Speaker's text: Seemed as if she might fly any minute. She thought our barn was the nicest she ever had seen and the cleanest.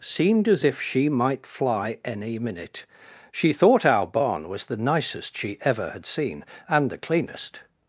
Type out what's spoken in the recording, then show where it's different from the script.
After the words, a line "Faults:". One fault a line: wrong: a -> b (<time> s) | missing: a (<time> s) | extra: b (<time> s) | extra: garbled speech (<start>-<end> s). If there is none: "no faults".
Seemed as if she might fly any minute. She thought our barn was the nicest she ever had seen and the cleanest.
Faults:
no faults